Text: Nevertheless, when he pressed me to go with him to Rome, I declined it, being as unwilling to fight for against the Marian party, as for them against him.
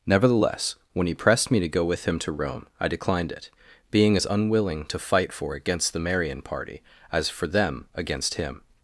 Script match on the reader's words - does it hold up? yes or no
yes